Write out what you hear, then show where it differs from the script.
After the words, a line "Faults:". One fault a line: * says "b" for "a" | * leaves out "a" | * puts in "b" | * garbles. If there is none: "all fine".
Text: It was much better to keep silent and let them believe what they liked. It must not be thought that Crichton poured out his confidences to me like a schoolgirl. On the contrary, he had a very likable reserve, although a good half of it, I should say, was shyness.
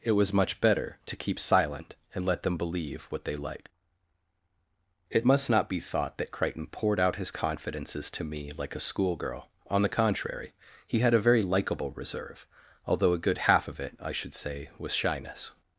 It was much better to keep silent and let them believe what they liked. It must not be thought that Crichton poured out his confidences to me like a schoolgirl. On the contrary, he had a very likable reserve, although a good half of it, I should say, was shyness.
Faults:
all fine